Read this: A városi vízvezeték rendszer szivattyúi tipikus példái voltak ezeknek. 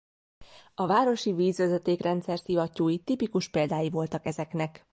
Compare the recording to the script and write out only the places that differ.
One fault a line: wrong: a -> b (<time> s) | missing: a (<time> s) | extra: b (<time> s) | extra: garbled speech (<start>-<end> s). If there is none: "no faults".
no faults